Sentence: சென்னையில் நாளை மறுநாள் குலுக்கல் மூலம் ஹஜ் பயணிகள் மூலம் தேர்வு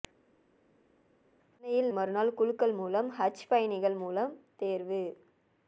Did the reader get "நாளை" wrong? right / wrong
wrong